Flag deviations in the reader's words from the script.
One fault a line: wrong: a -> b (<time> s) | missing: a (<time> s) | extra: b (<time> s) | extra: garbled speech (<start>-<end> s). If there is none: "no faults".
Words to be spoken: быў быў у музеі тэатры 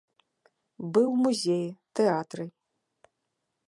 missing: быў (1.1 s)